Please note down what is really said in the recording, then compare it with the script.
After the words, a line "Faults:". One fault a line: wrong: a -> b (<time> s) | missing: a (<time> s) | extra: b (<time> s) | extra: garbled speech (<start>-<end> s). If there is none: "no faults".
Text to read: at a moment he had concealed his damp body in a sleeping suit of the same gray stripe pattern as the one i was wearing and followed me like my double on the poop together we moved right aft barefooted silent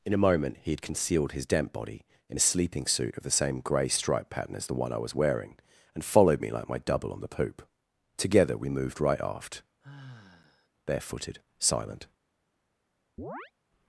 in a moment he had concealed his damp body in a sleeping suit of the same gray stripe pattern as the one i was wearing and followed me like my double on the poop together we moved right aft barefooted silent
Faults:
wrong: at -> in (0.0 s)